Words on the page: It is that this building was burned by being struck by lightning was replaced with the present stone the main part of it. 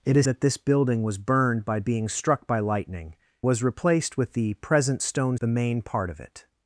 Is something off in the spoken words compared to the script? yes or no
no